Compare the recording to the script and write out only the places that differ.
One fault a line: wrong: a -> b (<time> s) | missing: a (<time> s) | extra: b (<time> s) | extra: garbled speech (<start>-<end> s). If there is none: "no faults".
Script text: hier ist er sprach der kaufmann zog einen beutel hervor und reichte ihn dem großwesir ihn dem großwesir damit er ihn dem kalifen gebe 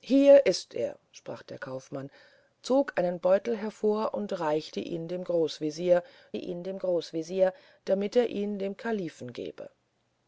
no faults